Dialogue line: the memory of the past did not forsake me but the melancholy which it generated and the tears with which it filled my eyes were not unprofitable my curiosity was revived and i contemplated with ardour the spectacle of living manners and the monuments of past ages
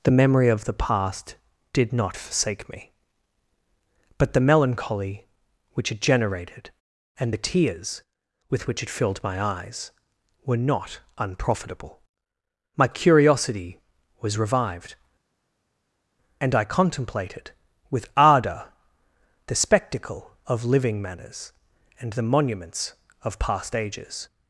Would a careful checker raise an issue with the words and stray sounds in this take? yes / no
no